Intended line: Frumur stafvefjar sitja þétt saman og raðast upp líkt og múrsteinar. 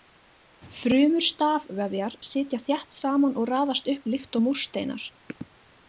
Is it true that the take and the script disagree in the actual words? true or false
false